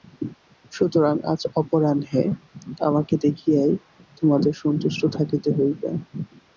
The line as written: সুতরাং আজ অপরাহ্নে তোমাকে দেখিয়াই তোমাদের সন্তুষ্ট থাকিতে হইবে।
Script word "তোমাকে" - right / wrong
wrong